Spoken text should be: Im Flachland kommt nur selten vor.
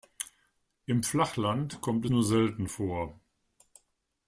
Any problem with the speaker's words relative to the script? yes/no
no